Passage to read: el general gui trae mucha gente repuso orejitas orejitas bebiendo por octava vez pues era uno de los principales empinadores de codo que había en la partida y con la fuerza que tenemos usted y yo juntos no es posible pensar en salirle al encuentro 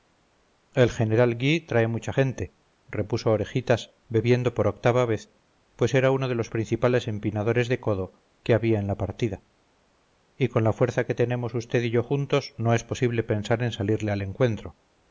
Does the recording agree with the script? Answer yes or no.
no